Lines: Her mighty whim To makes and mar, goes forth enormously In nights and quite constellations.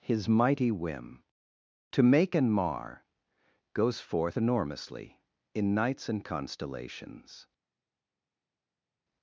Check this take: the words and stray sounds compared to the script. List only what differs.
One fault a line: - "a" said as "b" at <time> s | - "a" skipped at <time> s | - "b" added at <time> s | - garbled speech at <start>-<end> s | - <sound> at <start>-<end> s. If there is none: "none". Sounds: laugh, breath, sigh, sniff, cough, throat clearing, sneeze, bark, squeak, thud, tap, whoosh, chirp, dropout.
- "Her" said as "His" at 0.0 s
- "makes" said as "make" at 2.0 s
- "quite" skipped at 6.2 s